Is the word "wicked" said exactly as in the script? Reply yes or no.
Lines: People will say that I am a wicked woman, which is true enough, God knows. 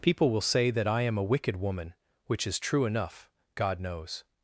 yes